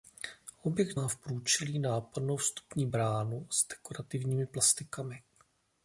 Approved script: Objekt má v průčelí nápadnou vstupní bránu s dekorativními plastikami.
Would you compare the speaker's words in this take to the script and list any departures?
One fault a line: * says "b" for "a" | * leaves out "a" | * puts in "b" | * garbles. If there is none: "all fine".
all fine